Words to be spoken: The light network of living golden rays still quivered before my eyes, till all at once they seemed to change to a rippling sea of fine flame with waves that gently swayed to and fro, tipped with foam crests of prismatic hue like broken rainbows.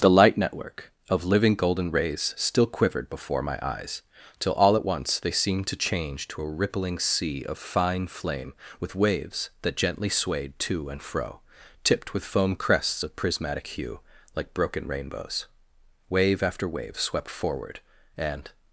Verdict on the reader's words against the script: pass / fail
fail